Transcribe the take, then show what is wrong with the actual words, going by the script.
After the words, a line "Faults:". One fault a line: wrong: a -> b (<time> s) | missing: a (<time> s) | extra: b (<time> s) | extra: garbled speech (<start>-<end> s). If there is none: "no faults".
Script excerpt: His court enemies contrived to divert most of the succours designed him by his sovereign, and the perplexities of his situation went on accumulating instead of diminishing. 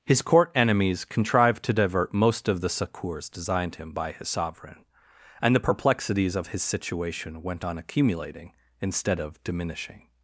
His court enemies contrived to divert most of the succours designed him by his sovereign, and the perplexities of his situation went on accumulating instead of diminishing.
Faults:
no faults